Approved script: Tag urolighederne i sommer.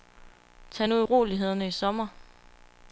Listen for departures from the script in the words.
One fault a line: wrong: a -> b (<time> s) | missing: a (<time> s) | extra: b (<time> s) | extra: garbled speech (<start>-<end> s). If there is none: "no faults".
extra: nu (0.9 s)